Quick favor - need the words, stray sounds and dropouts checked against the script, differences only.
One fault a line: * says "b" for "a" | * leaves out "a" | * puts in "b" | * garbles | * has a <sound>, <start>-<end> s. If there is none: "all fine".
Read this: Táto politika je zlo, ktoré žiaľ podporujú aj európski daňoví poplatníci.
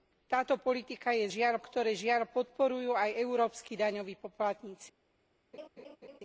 * says "žiaľ" for "zlo"
* has a laugh, 5.5-6.2 s